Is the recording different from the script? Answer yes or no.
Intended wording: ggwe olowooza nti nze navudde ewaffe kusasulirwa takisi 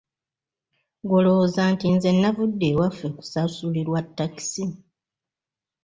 no